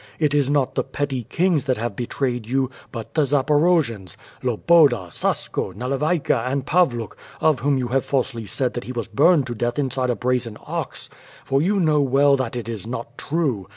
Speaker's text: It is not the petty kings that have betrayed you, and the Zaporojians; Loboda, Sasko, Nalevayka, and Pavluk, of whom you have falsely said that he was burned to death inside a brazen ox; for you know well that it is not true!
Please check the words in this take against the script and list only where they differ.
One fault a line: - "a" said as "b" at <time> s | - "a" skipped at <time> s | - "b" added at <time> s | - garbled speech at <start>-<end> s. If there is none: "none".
- "and" said as "but" at 2.9 s